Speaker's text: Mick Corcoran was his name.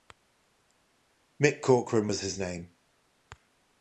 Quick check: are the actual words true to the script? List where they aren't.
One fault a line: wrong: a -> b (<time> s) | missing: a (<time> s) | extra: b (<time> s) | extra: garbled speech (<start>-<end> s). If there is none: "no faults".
no faults